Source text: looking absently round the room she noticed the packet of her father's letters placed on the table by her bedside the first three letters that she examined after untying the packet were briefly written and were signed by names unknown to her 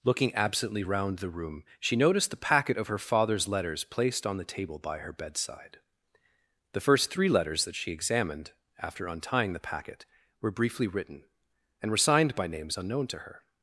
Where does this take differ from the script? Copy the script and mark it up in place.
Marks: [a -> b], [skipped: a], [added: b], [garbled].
looking absently round the room she noticed the packet of her father's letters placed on the table by her bedside the first three letters that she examined after untying the packet were briefly written and were signed by names unknown to her